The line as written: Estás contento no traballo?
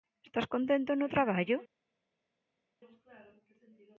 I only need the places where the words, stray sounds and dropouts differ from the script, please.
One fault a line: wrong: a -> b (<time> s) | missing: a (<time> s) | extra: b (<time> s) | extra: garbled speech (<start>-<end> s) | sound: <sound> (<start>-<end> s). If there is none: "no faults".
no faults